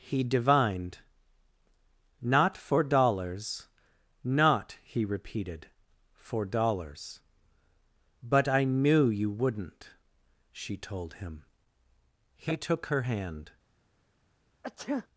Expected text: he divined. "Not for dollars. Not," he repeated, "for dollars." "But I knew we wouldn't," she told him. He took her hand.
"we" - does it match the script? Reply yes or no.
no